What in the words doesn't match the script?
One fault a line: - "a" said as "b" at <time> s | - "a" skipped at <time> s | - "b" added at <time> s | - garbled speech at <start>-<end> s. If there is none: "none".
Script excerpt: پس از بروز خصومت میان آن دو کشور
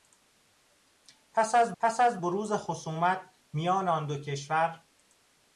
- "پس از" added at 1.8 s